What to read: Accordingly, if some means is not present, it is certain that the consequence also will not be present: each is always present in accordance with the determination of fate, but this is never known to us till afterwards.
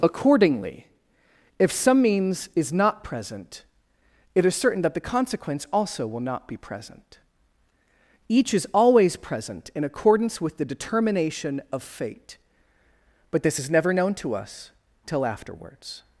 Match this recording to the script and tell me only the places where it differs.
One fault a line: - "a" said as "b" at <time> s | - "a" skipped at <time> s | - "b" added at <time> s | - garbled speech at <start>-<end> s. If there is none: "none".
none